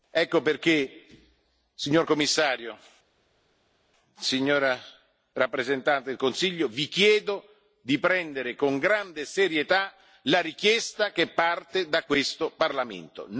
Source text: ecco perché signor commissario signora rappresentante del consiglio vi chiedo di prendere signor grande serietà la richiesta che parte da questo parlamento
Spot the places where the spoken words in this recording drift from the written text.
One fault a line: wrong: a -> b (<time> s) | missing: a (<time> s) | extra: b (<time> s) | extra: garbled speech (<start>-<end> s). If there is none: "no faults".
wrong: signor -> con (8.5 s)